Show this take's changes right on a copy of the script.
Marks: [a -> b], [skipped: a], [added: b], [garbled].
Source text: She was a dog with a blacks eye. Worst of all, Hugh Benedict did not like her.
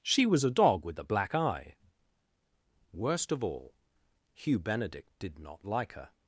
She was a dog with a [blacks -> black] eye. Worst of all, Hugh Benedict did not like her.